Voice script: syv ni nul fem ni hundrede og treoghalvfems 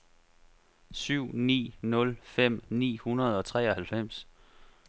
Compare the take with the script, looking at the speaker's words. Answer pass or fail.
pass